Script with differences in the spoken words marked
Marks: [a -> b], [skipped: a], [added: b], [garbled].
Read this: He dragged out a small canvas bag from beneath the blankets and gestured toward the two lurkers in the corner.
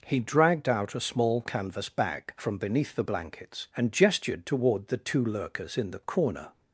He dragged out a small canvas bag from beneath the blankets and gestured toward the two lurkers in the corner.